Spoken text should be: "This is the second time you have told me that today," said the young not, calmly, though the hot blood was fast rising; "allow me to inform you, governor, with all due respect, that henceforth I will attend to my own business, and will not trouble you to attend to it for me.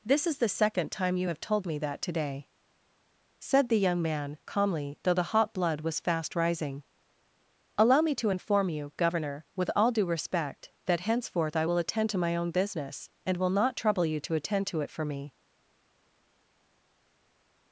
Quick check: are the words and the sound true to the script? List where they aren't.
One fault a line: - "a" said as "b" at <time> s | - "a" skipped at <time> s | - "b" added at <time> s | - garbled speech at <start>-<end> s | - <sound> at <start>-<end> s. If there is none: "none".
- "not" said as "man" at 4.0 s